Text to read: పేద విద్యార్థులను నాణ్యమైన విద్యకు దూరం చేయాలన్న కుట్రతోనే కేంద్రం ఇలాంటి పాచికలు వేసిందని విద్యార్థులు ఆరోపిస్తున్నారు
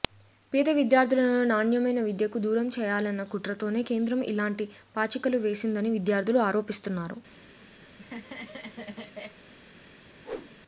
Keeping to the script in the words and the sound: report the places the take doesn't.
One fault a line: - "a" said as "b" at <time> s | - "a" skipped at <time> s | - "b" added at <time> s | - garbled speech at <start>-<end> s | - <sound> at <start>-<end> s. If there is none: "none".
- laugh at 7.8-9.4 s
- whoosh at 10.2-10.6 s